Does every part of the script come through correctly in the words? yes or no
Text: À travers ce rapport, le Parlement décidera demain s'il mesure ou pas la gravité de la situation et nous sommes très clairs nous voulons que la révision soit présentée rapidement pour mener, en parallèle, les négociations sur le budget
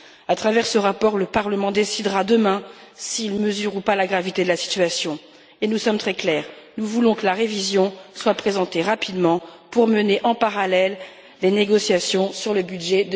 yes